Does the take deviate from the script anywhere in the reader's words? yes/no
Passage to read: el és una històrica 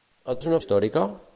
no